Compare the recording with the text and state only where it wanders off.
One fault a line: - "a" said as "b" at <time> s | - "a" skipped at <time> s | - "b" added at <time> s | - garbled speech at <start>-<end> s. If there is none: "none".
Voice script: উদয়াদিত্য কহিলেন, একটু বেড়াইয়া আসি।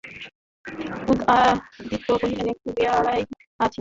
none